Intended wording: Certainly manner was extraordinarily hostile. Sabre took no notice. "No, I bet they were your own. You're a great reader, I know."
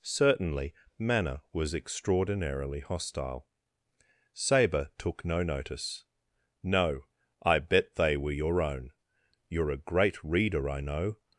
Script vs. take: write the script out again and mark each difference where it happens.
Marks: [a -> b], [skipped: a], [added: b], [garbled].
Certainly manner was extraordinarily hostile. Sabre took no notice. "No, I bet they were your own. You're a great reader, I know."